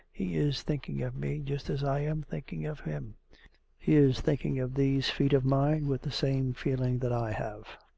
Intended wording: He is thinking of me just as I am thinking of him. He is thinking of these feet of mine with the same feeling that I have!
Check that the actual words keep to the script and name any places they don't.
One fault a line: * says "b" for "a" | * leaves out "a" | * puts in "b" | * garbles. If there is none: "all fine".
all fine